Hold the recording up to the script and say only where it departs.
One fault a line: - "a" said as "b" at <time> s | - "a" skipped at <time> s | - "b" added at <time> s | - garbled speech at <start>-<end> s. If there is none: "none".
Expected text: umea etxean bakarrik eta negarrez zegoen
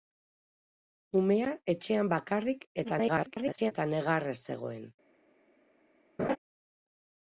- garbled speech at 2.8-3.7 s